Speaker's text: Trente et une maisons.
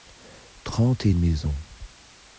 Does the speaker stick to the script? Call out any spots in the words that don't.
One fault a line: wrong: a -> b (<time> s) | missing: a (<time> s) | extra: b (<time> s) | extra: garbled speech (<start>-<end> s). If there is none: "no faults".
no faults